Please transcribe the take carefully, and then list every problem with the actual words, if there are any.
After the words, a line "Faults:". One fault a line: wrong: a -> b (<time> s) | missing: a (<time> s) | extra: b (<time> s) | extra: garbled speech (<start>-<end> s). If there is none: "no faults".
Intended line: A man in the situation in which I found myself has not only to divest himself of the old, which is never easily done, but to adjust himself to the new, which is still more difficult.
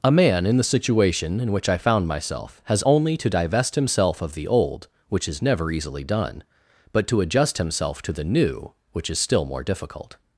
A man in the situation in which I found myself has only to divest himself of the old, which is never easily done, but to adjust himself to the new, which is still more difficult.
Faults:
missing: not (2.8 s)